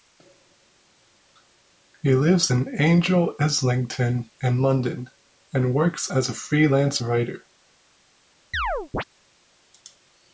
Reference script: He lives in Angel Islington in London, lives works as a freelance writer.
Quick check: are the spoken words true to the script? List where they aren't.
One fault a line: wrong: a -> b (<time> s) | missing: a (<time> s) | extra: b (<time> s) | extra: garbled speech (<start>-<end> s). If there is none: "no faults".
wrong: lives -> and (5.5 s)